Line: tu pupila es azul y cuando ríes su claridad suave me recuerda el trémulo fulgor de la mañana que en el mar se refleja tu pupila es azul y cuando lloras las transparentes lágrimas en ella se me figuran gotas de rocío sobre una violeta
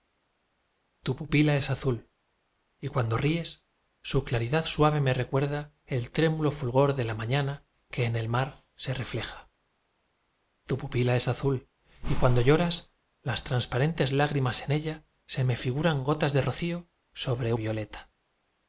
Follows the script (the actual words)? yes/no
no